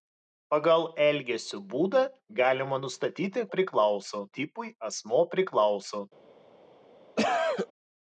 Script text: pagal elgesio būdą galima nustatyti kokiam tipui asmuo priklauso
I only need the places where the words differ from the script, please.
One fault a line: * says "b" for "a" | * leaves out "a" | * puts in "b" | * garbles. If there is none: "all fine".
* says "priklauso" for "kokiam"